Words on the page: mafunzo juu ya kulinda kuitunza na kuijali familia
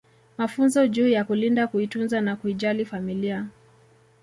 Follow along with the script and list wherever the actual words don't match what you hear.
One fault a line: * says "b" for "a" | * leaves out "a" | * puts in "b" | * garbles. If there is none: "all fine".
all fine